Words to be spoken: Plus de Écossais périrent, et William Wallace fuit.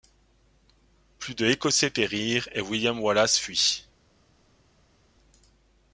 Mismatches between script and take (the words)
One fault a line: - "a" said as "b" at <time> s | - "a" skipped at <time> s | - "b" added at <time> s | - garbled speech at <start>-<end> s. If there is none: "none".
none